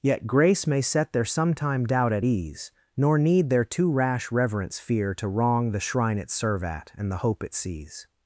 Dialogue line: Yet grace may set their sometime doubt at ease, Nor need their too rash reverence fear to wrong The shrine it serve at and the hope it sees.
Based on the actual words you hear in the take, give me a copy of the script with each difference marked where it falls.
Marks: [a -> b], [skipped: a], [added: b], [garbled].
Yet grace may set their sometime doubt at ease, Nor need their too rash reverence fear to wrong The shrine it serve at and the hope it sees.